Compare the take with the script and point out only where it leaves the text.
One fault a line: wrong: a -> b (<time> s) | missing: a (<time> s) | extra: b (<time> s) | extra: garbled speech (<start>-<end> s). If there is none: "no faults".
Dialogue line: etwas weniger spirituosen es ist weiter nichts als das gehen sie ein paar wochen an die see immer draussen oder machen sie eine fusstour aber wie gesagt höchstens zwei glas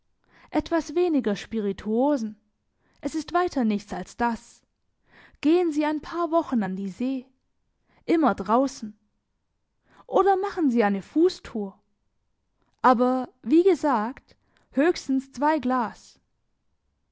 no faults